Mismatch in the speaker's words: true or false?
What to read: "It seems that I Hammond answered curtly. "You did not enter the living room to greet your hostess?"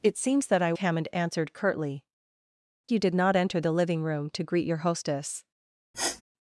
false